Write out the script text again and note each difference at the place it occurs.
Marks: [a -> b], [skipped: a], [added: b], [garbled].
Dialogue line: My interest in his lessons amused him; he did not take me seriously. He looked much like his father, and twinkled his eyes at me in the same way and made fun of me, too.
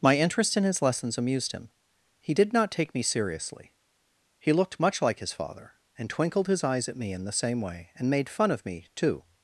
My interest in his lessons amused him; he did not take me seriously. He looked much like his father, and twinkled his eyes at me in the same way and made fun of me, too.